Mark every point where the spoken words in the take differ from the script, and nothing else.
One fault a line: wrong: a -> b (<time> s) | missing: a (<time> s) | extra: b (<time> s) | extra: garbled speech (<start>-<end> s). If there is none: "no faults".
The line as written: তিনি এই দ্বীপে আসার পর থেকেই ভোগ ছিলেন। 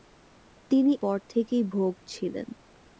missing: এই দ্বীপে আসার (0.9 s)